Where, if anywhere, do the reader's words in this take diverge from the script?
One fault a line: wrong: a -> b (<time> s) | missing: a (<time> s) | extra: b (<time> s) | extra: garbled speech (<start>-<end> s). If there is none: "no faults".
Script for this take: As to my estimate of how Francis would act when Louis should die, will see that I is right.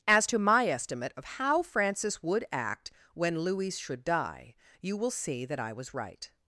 extra: you (4.8 s)
wrong: is -> was (5.7 s)